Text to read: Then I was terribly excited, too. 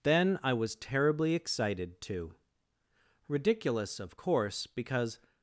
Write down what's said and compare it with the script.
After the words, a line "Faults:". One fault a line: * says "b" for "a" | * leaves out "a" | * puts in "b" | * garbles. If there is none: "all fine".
Then I was terribly excited, too. Ridiculous, of course, because
Faults:
* puts in "Ridiculous of course because"